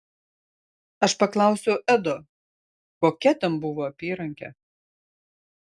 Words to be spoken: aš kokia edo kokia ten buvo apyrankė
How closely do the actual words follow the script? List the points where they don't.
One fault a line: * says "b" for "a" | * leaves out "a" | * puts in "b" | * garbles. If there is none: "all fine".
* says "paklausiau" for "kokia"